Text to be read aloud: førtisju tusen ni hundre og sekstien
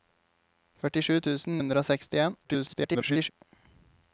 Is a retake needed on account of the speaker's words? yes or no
yes